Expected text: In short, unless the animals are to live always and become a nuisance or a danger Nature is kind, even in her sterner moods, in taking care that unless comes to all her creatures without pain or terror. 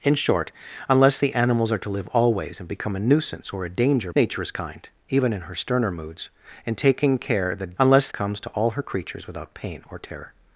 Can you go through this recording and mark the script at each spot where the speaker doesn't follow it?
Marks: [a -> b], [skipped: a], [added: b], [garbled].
In short, unless the animals are to live always and become a nuisance or a danger Nature is kind, even in her sterner moods, in taking care that unless comes to all her creatures without pain or terror.